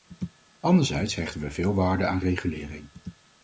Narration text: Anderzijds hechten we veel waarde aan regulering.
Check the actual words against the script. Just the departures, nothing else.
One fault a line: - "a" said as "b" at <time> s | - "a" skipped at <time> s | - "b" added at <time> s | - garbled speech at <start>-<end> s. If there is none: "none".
none